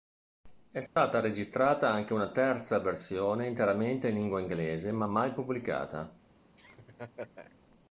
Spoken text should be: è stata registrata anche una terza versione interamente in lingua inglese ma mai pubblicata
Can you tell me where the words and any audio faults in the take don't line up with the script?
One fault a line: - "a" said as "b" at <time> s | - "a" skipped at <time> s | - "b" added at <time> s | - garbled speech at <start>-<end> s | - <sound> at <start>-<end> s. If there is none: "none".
- dropout at 0.9-1.0 s
- laugh at 6.6-7.6 s